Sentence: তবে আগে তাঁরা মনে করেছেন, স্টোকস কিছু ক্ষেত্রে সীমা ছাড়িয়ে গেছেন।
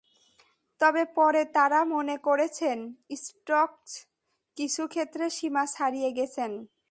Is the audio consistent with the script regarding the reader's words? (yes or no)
no